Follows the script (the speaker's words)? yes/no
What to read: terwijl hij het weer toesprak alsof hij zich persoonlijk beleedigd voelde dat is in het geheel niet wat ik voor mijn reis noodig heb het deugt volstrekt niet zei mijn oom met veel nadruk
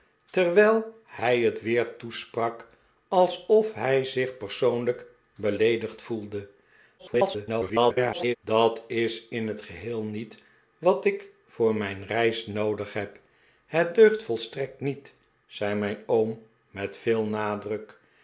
no